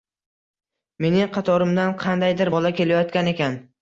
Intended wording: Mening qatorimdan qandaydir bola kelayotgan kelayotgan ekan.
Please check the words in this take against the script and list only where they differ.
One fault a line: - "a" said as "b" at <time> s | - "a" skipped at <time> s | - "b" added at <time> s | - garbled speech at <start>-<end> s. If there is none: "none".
- "kelayotgan" skipped at 3.3 s